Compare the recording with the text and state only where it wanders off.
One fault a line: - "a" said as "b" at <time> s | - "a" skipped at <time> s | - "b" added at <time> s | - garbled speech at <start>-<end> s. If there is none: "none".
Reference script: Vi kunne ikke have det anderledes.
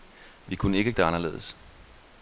none